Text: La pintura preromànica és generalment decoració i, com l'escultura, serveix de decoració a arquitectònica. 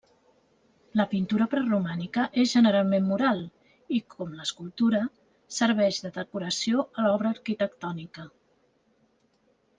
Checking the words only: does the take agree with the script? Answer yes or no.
no